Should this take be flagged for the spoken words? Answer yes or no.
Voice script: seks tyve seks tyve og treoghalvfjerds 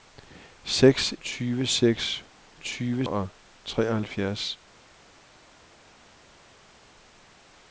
no